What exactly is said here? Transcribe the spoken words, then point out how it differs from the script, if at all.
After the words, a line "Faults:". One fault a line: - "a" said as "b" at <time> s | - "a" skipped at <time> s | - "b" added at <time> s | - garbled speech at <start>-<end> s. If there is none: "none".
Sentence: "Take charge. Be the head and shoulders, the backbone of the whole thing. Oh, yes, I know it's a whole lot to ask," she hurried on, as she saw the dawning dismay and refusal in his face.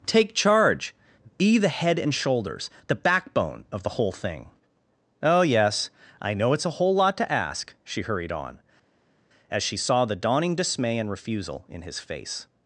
"Take charge. Be the head and shoulders, the backbone of the whole thing. Oh, yes, I know it's a whole lot to ask," she hurried on, as she saw the dawning dismay and refusal in his face.
Faults:
none